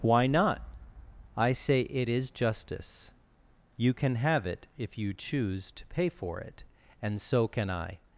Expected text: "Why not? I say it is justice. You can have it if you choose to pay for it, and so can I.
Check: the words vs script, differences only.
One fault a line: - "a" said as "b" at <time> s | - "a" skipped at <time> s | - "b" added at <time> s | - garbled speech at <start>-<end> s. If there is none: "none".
none